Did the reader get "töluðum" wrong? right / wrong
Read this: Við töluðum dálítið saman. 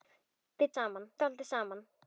wrong